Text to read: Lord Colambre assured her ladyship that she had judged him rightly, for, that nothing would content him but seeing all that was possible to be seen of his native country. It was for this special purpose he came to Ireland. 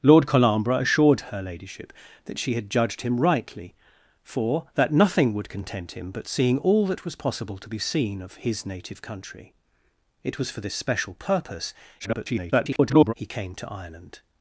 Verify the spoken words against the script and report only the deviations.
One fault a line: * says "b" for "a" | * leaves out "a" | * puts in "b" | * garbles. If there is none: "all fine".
* garbles